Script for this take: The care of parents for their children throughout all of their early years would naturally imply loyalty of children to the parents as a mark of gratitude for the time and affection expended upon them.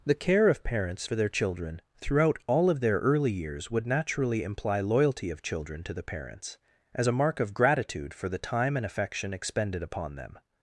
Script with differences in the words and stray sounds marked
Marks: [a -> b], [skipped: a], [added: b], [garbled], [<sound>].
The care of parents for their children throughout all of their early years would naturally imply loyalty of children to the parents as a mark of gratitude for the time and affection expended upon them.